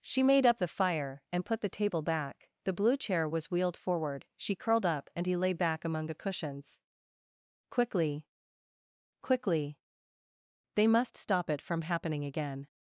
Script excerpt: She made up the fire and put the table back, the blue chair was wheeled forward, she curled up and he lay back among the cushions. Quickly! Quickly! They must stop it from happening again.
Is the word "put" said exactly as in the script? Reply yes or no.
yes